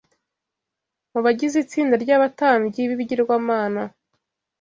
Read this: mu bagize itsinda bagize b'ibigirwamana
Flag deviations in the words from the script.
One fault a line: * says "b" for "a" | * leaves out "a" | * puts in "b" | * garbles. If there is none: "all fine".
* says "ry'abatambyi" for "bagize"